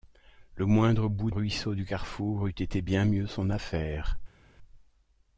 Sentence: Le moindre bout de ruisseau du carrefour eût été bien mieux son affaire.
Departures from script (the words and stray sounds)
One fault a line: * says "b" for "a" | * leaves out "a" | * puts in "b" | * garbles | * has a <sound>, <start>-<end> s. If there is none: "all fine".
* leaves out "de"